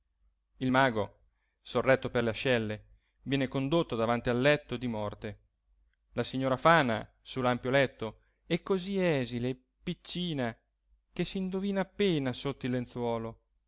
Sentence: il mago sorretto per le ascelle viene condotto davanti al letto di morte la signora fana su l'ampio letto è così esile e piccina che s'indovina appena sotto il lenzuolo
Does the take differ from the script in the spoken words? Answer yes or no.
no